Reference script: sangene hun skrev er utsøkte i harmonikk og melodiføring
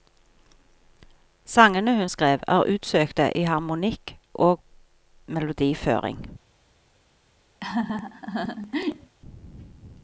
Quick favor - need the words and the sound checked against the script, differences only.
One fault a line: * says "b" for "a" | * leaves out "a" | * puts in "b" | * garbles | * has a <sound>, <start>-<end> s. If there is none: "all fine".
* has a laugh, 7.6-9.2 s